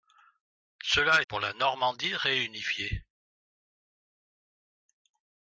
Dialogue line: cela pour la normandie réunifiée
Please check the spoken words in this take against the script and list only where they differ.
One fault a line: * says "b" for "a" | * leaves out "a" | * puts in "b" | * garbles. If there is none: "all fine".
all fine